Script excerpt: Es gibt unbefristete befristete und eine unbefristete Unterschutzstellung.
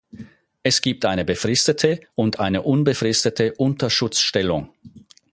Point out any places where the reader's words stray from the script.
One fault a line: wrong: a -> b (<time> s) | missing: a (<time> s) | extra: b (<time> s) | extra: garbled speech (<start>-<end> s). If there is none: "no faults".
wrong: unbefristete -> eine (1.1 s)